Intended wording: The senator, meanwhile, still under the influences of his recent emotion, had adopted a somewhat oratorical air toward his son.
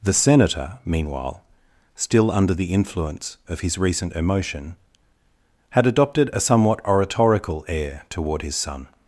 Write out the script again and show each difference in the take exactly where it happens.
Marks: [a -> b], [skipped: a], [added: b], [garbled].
The senator, meanwhile, still under the [influences -> influence] of his recent emotion, had adopted a somewhat oratorical air toward his son.